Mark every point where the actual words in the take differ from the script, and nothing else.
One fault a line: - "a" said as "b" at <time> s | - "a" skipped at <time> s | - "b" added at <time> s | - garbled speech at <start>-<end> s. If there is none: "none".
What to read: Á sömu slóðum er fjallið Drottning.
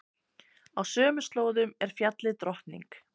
none